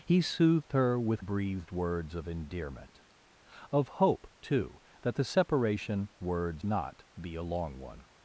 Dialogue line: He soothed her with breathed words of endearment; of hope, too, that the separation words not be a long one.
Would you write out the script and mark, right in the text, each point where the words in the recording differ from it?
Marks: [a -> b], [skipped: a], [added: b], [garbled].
He soothed her with breathed words of endearment; of hope, too, that the separation words not be a long one.